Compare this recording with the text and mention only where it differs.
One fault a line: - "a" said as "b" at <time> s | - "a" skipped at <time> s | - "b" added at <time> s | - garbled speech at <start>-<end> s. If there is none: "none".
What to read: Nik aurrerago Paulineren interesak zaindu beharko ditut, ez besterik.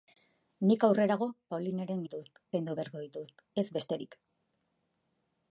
- "interesak" said as "ditut" at 2.0 s